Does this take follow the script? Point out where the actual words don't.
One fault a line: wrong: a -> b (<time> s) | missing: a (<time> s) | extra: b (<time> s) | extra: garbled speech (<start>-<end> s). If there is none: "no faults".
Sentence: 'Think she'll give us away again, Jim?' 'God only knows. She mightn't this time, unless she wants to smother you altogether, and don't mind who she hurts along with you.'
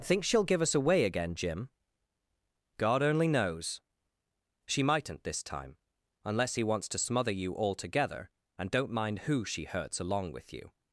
wrong: she -> he (6.5 s)